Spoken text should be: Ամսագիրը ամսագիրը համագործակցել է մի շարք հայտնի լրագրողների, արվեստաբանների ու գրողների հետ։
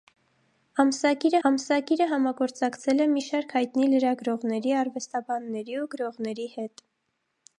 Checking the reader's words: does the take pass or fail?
pass